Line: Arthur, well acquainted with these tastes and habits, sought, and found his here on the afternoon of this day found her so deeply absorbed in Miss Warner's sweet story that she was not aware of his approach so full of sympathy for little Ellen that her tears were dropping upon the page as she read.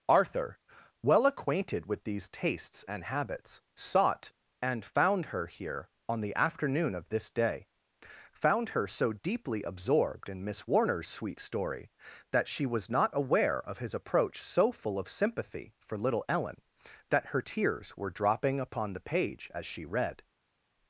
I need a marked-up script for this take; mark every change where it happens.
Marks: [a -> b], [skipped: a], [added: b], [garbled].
Arthur, well acquainted with these tastes and habits, sought, and found [his -> her] here on the afternoon of this day found her so deeply absorbed in Miss Warner's sweet story that she was not aware of his approach so full of sympathy for little Ellen that her tears were dropping upon the page as she read.